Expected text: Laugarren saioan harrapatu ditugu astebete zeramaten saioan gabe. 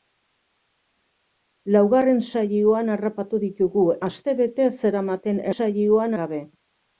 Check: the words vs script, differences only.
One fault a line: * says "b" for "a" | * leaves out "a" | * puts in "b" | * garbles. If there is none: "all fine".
all fine